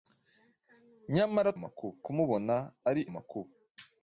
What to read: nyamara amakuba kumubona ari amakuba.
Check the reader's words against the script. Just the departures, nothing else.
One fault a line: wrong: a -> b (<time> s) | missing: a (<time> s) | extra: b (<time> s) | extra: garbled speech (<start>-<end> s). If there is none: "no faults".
no faults